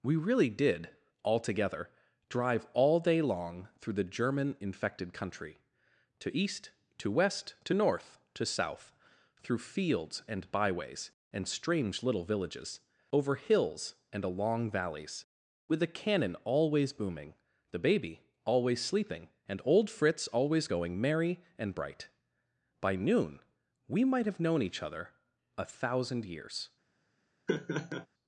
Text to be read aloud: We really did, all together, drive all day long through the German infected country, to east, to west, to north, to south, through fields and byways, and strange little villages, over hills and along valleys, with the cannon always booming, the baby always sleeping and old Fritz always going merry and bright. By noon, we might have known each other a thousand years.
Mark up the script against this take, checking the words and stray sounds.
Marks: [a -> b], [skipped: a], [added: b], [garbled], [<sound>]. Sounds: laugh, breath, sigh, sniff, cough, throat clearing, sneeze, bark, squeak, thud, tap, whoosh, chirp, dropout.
We really did, all together, drive all day long through the German infected country, to east, to west, to north, to south, through fields and byways, and strange little villages, over hills and along valleys, with the cannon always booming, the baby always sleeping and old Fritz always going merry and bright. By noon, we might have known each other a thousand years. [laugh]